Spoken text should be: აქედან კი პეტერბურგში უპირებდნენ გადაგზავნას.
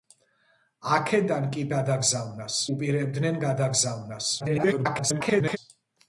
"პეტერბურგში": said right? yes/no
no